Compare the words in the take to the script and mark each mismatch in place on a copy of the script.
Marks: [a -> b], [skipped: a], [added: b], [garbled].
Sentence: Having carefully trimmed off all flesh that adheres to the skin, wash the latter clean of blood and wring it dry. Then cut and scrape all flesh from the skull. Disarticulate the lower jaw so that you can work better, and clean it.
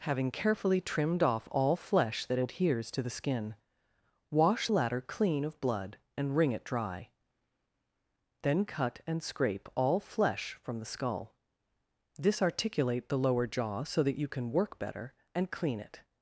Having carefully trimmed off all flesh that adheres to the skin, wash [skipped: the] latter clean of blood and wring it dry. Then cut and scrape all flesh from the skull. Disarticulate the lower jaw so that you can work better, and clean it.